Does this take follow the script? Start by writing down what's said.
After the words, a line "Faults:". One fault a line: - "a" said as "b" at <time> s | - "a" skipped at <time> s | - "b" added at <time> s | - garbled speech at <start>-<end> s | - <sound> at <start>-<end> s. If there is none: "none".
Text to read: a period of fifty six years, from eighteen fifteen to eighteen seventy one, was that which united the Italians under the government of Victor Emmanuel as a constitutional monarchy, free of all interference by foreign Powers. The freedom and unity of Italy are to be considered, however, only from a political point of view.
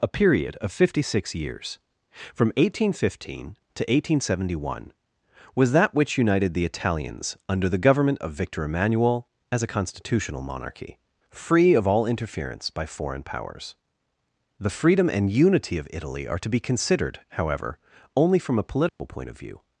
a period of fifty six years, from eighteen fifteen to eighteen seventy one, was that which united the Italians under the government of Victor Emmanuel as a constitutional monarchy, free of all interference by foreign Powers. The freedom and unity of Italy are to be considered, however, only from a political point of view.
Faults:
- dropout at 18.9-19.0 s